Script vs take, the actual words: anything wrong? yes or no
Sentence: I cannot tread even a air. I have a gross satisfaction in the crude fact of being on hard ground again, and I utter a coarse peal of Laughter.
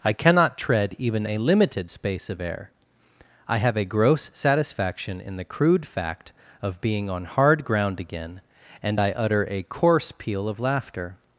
yes